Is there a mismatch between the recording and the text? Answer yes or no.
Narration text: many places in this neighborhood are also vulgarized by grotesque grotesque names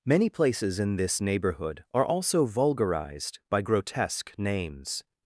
yes